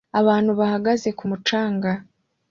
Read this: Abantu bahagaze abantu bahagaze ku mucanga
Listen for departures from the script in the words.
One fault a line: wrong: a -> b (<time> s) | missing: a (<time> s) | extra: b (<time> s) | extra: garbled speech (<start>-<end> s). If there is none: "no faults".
missing: abantu bahagaze (1.1 s)